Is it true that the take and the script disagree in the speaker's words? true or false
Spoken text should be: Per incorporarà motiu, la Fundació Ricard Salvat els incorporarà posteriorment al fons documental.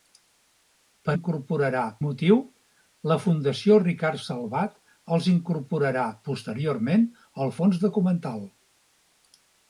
false